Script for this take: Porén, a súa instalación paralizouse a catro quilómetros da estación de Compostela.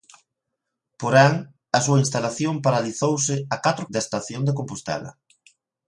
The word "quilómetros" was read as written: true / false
false